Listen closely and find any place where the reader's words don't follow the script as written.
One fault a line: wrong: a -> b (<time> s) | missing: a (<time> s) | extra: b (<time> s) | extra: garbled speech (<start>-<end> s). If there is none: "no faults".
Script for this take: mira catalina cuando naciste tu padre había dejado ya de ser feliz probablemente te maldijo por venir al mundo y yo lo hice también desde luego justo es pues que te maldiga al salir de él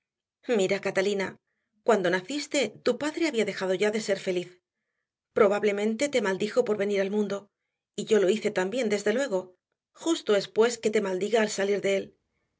no faults